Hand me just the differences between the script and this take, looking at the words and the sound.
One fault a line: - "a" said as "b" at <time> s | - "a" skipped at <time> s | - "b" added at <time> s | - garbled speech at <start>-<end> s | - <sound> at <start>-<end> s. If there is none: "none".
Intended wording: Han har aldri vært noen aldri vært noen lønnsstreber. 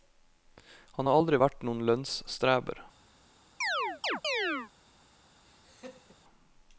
- "aldri vært noen" skipped at 1.8 s
- chirp at 3.6-4.7 s
- laugh at 5.4-6.2 s